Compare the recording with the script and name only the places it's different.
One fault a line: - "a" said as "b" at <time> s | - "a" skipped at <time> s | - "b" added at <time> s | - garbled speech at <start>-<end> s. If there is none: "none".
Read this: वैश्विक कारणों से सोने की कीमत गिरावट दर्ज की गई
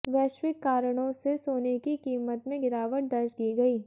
- "में" added at 2.5 s